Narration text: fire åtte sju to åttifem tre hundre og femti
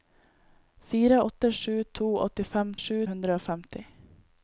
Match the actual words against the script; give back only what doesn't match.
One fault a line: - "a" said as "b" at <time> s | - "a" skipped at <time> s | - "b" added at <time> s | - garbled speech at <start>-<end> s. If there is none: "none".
- "tre" said as "sju" at 2.8 s